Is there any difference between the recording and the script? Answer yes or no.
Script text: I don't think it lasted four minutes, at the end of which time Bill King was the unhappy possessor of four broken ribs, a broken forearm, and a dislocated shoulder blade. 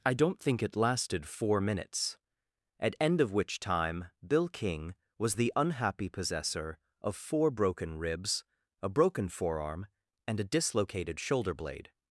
yes